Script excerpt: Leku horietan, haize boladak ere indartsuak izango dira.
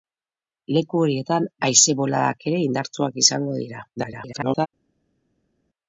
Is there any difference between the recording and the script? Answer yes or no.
yes